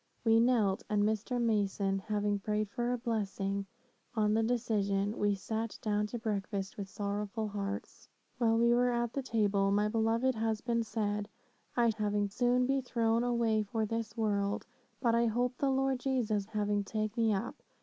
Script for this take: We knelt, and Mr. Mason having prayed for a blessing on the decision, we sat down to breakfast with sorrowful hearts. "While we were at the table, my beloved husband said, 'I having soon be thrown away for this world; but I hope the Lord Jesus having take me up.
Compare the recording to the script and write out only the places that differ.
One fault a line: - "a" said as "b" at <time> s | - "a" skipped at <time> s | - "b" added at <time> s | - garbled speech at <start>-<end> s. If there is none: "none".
none